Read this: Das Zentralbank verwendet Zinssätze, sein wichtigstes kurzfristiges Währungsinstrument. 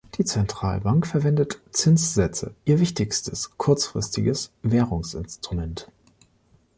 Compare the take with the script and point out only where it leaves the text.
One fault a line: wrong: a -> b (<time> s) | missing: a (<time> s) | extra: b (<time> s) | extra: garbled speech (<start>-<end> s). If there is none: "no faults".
wrong: Das -> Die (0.1 s)
wrong: sein -> ihr (2.7 s)